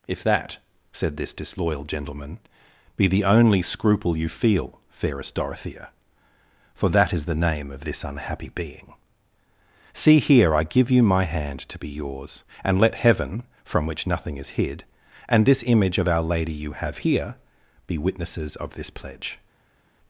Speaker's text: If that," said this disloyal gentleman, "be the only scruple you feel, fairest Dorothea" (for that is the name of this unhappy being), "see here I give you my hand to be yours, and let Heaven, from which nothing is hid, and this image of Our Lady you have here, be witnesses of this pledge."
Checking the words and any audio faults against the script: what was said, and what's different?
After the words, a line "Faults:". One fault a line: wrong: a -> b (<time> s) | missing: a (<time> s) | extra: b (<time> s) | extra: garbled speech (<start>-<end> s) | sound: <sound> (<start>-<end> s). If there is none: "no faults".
If that," said this disloyal gentleman, "be the only scruple you feel, fairest Dorothea" (for that is the name of this unhappy being), "see here I give you my hand to be yours, and let Heaven, from which nothing is hid, and this image of Our Lady you have here, be witnesses of this pledge."
Faults:
no faults